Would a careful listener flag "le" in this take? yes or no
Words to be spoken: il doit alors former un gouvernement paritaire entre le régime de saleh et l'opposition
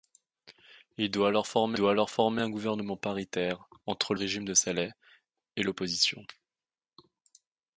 yes